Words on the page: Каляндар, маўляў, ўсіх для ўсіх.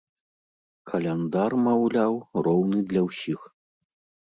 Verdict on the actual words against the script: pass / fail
fail